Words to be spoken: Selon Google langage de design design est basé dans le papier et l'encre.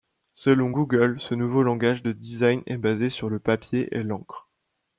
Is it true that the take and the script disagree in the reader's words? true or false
true